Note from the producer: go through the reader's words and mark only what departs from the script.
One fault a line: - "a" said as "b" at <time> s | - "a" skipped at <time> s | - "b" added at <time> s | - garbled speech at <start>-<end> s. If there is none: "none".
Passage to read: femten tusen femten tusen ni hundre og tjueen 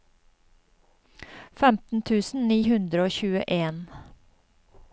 - "femten tusen" skipped at 2.5 s